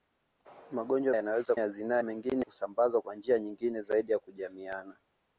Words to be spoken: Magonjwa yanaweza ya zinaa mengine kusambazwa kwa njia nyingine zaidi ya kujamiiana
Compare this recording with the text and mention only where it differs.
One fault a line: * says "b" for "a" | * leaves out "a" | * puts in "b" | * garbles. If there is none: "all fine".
all fine